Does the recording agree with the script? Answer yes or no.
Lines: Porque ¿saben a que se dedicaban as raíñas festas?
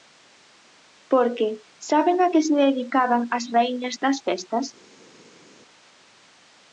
no